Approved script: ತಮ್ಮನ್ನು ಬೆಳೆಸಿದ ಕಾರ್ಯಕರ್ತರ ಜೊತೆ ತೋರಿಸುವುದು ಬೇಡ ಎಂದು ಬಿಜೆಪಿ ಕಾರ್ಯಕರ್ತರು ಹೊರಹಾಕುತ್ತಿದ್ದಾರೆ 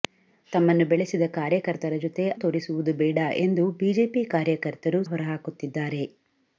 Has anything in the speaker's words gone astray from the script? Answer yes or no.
no